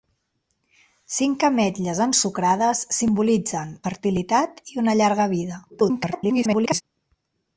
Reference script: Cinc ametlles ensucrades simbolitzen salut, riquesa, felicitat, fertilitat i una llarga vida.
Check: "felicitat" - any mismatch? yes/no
yes